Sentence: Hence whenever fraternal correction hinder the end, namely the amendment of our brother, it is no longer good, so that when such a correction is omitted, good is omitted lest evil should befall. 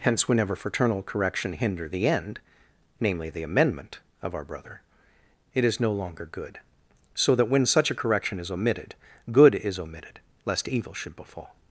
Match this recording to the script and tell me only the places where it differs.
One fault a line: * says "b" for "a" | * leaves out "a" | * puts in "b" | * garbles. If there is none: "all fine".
all fine